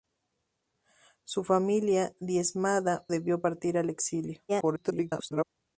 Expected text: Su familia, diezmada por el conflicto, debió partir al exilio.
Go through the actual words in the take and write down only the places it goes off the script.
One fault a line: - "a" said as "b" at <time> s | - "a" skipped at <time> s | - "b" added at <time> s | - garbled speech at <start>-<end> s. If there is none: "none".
- "por el conflicto" skipped at 3.0 s
- garbled speech at 4.5-5.4 s